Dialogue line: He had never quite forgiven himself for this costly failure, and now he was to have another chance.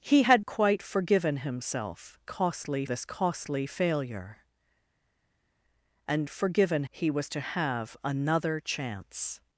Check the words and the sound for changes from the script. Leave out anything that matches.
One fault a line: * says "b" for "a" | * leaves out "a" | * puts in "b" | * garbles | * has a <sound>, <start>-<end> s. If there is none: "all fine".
* leaves out "never"
* says "costly" for "for"
* says "forgiven" for "now"